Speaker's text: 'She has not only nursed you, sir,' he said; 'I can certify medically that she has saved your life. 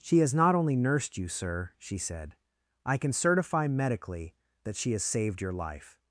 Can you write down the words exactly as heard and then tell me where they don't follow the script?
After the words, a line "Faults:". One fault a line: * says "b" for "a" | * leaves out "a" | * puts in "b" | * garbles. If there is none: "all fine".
'She has not only nursed you, sir,' she said; 'I can certify medically that she has saved your life.
Faults:
* says "she" for "he"